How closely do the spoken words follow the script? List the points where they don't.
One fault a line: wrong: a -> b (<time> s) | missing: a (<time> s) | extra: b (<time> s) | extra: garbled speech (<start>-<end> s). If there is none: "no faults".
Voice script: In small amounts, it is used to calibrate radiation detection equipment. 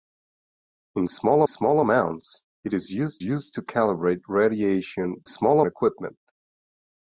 extra: small (1.4 s)
extra: used (3.2 s)
wrong: detection -> small (5.3 s)